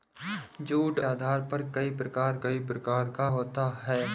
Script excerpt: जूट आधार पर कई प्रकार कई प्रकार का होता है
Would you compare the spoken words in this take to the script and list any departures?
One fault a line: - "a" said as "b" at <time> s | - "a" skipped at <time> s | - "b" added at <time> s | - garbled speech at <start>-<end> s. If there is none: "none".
none